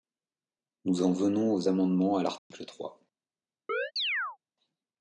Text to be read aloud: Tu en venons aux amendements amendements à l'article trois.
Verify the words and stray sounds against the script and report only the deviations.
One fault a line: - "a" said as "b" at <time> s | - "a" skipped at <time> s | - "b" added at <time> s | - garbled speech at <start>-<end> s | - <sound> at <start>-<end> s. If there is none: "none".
- "Tu" said as "Nous" at 0.8 s
- "amendements" skipped at 2.2 s
- dropout at 2.4-2.5 s
- chirp at 3.7-4.4 s